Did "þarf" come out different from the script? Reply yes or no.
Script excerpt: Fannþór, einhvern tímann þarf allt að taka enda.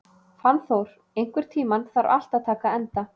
no